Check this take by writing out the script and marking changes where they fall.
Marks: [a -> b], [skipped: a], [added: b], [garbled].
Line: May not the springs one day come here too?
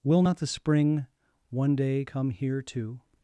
[May -> Will] not the [springs -> spring] one day come here too?